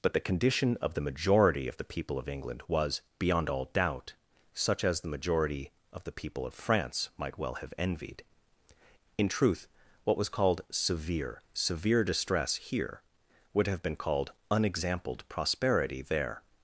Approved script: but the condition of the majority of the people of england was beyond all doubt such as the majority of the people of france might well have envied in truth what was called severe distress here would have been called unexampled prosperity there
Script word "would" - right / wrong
right